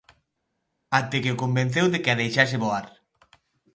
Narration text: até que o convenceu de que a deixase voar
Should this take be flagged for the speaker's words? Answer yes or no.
no